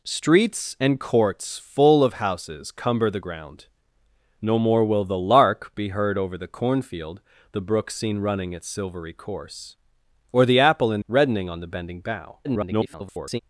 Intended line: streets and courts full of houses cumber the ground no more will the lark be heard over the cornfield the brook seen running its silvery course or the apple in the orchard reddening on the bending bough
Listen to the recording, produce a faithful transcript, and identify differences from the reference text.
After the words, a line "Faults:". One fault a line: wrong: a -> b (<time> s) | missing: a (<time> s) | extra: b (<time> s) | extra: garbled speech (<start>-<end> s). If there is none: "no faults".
streets and courts full of houses cumber the ground no more will the lark be heard over the cornfield the brook seen running its silvery course or the apple in reddening on the bending bough [garbled]
Faults:
missing: the orchard (11.0 s)
extra: garbled speech (12.4-13.4 s)